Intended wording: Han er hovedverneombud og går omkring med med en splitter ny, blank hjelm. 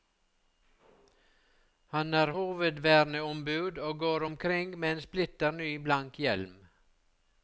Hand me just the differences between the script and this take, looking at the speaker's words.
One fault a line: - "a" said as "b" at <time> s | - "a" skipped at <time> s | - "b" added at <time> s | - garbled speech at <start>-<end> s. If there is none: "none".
- "med" skipped at 4.9 s